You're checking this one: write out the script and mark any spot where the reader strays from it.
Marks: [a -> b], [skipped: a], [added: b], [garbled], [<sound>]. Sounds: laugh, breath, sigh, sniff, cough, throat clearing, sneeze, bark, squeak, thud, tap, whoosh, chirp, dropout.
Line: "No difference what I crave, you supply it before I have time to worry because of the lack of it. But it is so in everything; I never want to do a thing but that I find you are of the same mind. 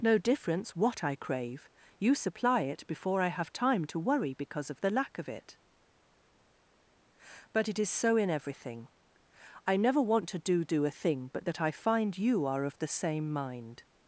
"No difference what I crave, you supply it before I have time to worry because of the lack of it. But it is so in everything; I never want to do [added: do] a thing but that I find you are of the same mind.